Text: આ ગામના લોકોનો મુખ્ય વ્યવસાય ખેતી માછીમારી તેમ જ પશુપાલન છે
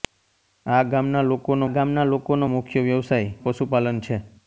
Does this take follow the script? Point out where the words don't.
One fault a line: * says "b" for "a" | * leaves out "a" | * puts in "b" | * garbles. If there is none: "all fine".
* puts in "ગામના લોકોનો"
* leaves out "ખેતી માછીમારી તેમ"